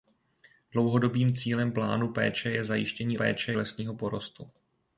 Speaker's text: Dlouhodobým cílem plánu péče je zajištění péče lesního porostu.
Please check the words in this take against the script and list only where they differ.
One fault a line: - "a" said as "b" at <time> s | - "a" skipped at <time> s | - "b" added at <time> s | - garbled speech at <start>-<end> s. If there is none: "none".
none